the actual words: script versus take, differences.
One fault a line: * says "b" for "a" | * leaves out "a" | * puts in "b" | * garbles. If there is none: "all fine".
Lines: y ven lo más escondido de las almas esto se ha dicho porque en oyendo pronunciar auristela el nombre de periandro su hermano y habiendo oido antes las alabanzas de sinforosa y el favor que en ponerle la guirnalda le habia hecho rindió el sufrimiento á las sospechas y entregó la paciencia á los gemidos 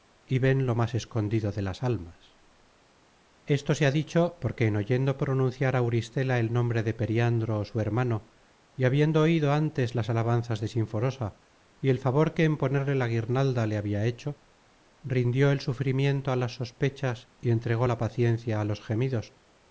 all fine